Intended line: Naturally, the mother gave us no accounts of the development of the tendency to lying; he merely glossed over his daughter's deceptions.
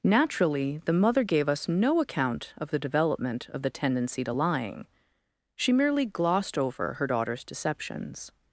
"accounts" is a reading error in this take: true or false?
true